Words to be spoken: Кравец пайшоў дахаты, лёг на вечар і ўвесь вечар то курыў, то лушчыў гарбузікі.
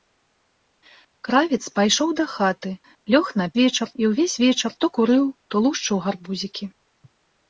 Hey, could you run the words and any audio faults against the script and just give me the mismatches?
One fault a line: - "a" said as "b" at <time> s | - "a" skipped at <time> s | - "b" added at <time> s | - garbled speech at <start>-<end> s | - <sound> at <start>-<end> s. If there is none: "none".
none